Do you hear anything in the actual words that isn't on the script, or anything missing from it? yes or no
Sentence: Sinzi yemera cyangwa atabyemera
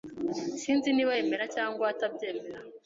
yes